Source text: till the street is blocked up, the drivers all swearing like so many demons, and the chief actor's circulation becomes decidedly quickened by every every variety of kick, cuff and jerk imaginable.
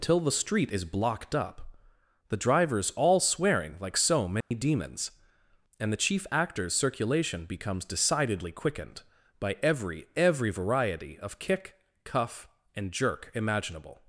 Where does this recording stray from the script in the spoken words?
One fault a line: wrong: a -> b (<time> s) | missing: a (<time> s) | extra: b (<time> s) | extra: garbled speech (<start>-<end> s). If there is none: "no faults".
no faults